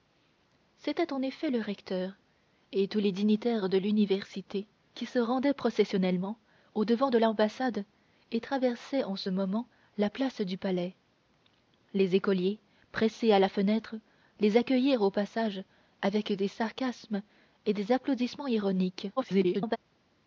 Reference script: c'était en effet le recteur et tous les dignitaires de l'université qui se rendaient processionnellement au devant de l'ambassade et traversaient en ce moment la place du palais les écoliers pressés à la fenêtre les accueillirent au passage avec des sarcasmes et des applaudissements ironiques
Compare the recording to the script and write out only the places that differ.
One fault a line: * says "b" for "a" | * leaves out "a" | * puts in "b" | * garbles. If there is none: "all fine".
* garbles